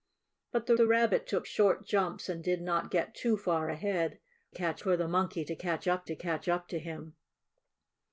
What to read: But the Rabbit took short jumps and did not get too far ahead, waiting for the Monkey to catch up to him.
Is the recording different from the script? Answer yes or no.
yes